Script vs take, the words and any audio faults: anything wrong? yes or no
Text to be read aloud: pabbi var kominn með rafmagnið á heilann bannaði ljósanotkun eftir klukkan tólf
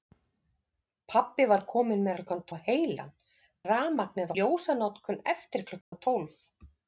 yes